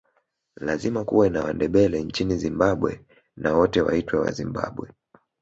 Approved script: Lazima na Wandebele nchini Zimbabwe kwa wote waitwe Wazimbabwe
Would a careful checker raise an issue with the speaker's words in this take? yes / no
yes